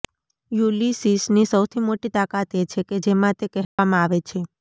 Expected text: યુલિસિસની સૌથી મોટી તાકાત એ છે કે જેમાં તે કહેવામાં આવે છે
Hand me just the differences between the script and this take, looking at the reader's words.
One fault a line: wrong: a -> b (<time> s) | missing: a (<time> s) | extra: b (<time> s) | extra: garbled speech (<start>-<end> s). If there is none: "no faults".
no faults